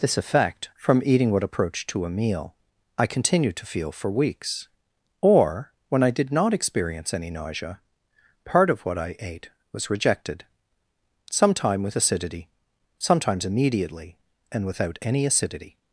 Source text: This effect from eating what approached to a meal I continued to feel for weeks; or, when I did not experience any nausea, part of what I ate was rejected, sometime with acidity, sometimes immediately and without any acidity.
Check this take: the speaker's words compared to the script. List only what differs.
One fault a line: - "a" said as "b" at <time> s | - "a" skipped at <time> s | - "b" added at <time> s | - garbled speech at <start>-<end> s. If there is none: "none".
none